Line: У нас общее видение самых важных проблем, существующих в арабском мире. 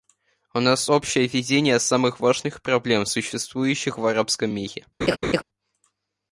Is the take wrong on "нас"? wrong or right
right